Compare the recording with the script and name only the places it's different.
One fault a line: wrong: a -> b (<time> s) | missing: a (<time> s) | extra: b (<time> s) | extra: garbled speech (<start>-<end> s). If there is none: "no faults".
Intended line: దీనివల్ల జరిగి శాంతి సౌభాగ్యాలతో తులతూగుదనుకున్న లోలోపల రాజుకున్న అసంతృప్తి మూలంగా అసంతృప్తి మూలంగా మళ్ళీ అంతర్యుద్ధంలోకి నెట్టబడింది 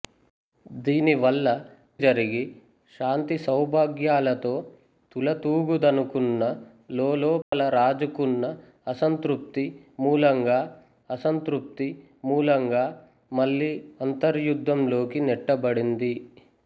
no faults